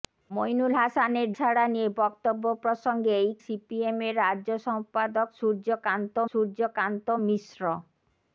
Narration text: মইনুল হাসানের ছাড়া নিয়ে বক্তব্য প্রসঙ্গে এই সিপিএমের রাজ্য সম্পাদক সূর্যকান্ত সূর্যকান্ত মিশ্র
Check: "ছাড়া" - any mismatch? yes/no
no